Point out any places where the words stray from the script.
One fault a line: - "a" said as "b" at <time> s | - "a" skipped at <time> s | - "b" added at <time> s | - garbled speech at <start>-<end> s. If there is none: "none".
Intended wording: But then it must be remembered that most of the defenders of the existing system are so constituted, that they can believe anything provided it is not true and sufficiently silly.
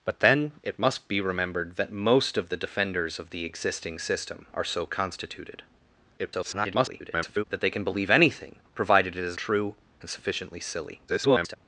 - garbled speech at 6.2-7.4 s
- "not" skipped at 9.4 s
- garbled speech at 11.1-11.6 s